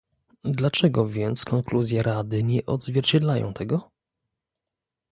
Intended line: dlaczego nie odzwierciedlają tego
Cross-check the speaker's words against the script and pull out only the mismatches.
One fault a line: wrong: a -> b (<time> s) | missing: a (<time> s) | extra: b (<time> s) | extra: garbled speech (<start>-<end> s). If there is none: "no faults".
extra: więc konkluzje rady (1.1 s)